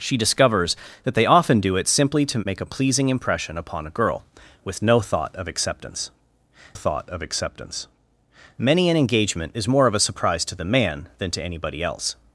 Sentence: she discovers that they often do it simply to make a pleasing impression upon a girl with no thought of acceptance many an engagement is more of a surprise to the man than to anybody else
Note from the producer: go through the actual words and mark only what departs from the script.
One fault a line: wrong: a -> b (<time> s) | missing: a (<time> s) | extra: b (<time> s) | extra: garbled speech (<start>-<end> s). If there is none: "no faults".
extra: thought of acceptance (6.7 s)